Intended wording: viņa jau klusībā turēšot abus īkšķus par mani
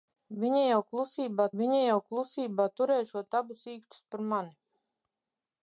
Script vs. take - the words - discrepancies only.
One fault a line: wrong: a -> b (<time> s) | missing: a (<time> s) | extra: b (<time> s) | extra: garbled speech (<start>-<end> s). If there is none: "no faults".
extra: viņa jau klusībā (1.6 s)